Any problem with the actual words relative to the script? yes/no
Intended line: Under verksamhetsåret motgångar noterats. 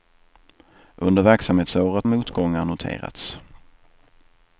no